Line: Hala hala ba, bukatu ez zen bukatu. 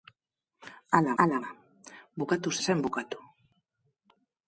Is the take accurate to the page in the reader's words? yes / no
yes